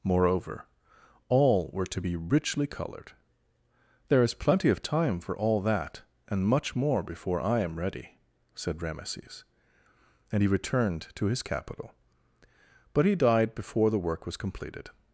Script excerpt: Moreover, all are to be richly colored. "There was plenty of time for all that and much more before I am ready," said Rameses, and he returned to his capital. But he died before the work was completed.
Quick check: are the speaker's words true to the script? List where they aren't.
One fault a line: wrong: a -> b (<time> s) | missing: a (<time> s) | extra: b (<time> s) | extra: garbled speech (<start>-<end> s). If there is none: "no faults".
wrong: are -> were (1.7 s)
wrong: was -> is (4.2 s)